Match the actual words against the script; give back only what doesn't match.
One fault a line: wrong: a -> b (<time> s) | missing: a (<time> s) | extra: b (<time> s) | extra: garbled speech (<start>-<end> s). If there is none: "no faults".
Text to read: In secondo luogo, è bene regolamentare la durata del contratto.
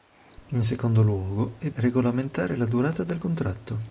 missing: bene (1.7 s)